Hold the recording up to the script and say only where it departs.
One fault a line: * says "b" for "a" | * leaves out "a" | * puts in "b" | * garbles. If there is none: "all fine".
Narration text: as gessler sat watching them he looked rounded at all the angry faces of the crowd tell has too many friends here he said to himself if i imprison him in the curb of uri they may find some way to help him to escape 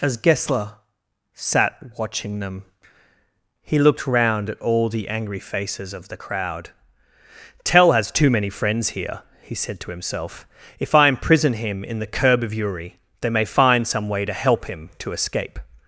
* says "round" for "rounded"